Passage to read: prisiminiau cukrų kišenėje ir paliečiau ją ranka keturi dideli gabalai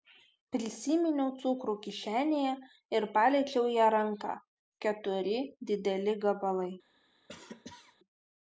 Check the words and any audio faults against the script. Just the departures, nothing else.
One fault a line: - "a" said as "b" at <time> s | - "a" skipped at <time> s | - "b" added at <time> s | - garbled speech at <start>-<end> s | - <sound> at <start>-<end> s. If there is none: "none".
- cough at 7.3-8.0 s